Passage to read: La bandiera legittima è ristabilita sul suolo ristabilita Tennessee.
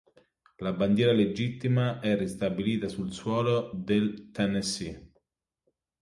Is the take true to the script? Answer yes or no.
no